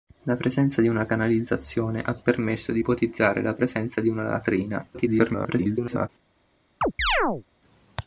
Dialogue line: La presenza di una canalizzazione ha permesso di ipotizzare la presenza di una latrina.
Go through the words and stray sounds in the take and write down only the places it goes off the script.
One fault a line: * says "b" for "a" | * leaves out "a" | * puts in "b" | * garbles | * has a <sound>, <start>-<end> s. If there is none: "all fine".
* garbles
* has a chirp, 6.8-7.4 s